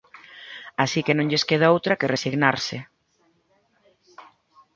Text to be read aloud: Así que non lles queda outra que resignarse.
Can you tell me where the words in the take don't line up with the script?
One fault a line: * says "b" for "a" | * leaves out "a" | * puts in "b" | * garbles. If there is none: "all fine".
all fine